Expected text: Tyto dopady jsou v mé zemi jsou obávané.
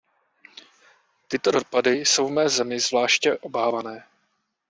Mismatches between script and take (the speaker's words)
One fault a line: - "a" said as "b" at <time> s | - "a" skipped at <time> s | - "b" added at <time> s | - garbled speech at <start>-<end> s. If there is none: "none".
- "jsou" said as "zvláště" at 2.8 s